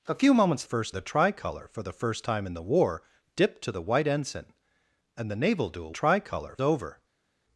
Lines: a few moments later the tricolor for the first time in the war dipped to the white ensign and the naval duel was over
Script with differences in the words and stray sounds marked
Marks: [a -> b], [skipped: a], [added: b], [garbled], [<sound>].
a few moments [later -> first] the tricolor for the first time in the war dipped to the white ensign and the naval duel [was -> tricolor] over